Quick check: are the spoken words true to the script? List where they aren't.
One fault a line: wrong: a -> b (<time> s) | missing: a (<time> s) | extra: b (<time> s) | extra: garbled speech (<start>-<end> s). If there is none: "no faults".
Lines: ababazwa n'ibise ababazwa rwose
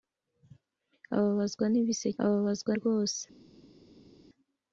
no faults